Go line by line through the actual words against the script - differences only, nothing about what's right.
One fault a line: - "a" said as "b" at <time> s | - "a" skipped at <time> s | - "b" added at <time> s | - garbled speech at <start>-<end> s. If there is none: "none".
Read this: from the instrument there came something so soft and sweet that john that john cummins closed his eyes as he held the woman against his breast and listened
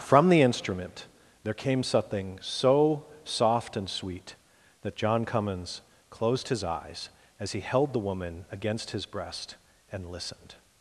- "that john" skipped at 5.2 s